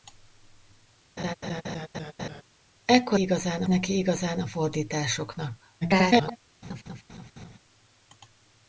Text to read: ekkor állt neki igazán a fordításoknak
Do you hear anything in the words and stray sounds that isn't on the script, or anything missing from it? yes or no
yes